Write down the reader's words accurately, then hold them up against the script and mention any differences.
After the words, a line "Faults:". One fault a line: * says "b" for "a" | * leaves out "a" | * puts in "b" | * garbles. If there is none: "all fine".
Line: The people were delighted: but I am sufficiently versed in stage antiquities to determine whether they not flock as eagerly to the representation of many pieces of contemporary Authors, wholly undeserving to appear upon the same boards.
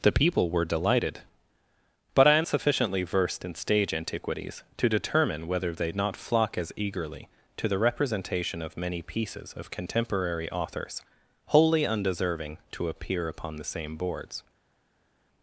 The people were delighted: but I am sufficiently versed in stage antiquities to determine whether they not flock as eagerly to the representation of many pieces of contemporary Authors, wholly undeserving to appear upon the same boards.
Faults:
all fine